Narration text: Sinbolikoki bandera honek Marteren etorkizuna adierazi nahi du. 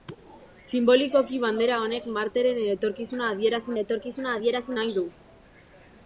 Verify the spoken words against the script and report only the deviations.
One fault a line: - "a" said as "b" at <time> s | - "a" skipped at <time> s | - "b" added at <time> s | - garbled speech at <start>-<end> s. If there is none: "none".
- "etorkizuna adierazi" added at 3.8 s